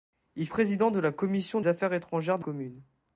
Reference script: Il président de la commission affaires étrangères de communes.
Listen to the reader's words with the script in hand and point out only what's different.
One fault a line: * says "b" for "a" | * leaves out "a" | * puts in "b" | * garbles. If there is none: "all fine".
all fine